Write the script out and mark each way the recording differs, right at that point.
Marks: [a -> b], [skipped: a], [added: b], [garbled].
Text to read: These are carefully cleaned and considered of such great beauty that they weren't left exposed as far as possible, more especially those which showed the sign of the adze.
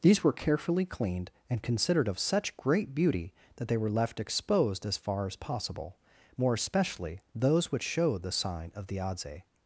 These [are -> were] carefully cleaned and considered of such great beauty that they [weren't -> were] left exposed as far as possible, more especially those which showed the sign of the adze.